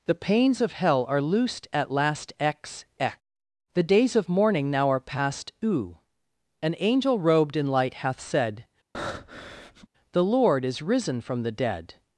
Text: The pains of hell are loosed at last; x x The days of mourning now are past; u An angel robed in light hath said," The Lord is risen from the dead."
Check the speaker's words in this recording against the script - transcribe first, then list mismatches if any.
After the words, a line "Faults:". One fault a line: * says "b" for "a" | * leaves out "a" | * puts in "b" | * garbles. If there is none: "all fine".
The pains of hell are loosed at last; x x The days of mourning now are past; u An angel robed in light hath said," The Lord is risen from the dead."
Faults:
all fine